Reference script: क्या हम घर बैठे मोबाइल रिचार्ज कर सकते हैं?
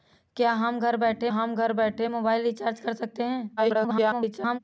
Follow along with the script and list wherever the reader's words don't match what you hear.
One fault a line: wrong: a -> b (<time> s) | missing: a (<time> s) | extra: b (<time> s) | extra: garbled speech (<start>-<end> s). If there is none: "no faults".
extra: हम घर बैठे (1.3 s)
extra: garbled speech (3.6-4.6 s)